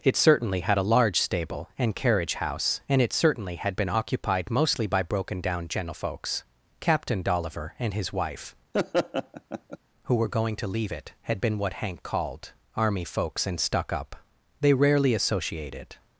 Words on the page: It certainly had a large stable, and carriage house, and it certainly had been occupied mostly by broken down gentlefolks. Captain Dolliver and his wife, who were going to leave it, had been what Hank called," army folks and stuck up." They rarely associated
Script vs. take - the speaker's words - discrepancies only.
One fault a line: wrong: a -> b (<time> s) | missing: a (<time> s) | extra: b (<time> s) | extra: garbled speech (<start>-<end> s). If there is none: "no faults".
no faults